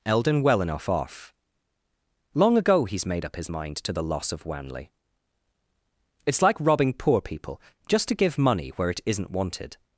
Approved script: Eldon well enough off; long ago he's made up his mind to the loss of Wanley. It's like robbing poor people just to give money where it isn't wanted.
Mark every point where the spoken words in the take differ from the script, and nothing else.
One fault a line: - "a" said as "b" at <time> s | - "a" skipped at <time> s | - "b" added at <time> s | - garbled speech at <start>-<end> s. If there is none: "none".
none